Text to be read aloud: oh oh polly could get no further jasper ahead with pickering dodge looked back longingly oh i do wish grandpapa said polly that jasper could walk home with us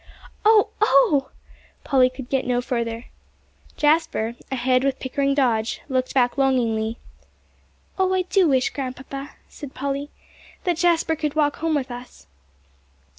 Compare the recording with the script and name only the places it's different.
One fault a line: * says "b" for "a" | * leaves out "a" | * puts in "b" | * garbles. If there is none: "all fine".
all fine